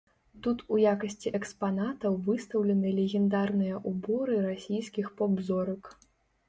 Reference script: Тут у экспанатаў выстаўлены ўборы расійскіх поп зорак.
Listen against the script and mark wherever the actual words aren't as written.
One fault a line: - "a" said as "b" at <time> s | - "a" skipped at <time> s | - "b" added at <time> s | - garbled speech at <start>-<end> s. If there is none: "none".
- "якасці" added at 0.9 s
- "легендарныя" added at 3.0 s